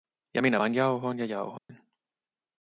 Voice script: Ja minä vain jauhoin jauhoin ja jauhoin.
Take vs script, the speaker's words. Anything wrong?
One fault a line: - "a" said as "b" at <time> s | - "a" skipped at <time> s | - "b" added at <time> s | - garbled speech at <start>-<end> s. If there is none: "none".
- "jauhoin" skipped at 1.2 s